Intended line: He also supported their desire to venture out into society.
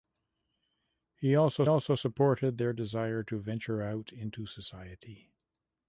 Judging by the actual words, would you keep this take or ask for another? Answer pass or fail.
fail